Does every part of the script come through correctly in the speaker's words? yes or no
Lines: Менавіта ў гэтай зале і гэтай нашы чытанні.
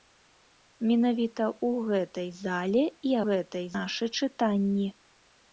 yes